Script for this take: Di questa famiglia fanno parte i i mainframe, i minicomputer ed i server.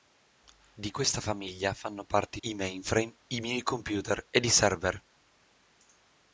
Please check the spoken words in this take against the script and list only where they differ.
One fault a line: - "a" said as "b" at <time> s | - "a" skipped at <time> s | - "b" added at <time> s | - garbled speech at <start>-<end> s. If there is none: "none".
none